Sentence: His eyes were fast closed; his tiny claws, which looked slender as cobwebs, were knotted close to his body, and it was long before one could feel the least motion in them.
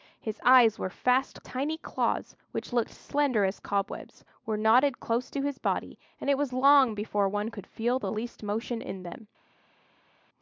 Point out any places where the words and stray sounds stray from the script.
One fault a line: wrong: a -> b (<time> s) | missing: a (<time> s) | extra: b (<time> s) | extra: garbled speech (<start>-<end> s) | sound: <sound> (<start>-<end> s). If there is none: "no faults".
missing: closed his (1.4 s)